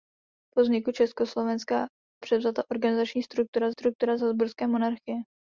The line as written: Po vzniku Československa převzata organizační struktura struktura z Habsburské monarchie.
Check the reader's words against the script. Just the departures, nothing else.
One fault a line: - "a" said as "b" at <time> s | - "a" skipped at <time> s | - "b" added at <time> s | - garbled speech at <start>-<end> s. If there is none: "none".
none